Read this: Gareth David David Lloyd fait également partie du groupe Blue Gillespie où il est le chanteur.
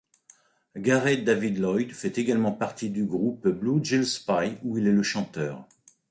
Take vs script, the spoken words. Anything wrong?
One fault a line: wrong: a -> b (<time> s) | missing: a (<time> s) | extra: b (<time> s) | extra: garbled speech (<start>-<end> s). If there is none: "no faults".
missing: David (1.6 s)